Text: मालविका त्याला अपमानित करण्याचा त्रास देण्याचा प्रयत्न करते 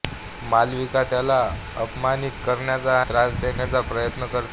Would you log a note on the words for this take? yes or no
no